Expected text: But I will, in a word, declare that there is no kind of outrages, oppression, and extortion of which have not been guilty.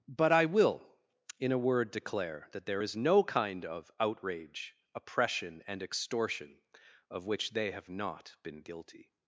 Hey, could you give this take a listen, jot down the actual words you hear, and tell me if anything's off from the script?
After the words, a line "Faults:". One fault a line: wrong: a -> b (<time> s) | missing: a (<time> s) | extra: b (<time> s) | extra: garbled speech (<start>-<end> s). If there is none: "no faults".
But I will, in a word, declare that there is no kind of outrage, oppression, and extortion of which they have not been guilty.
Faults:
wrong: outrages -> outrage (4.0 s)
extra: they (7.5 s)